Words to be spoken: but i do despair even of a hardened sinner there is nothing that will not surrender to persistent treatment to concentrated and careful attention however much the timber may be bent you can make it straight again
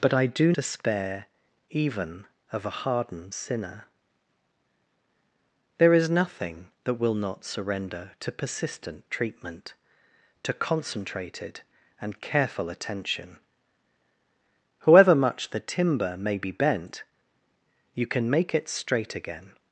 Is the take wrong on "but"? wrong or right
right